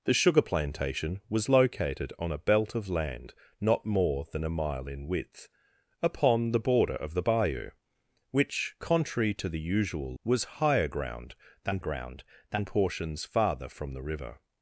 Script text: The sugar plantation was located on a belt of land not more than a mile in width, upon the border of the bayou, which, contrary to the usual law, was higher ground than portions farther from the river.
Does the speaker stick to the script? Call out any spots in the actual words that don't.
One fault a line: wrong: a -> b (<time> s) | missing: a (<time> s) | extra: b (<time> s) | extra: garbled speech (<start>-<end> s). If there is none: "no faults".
missing: law (10.2 s)
extra: ground than (11.8 s)